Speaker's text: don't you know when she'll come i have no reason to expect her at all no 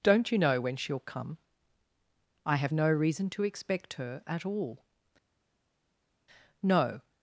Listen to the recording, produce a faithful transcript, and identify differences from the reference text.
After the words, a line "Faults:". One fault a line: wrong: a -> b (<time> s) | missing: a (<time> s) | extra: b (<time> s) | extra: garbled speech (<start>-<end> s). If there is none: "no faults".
don't you know when she'll come i have no reason to expect her at all no
Faults:
no faults